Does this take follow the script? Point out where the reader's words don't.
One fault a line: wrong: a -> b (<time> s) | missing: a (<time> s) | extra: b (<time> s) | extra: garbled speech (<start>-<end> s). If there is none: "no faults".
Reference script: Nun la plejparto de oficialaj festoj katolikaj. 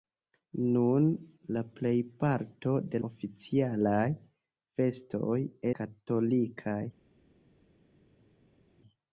no faults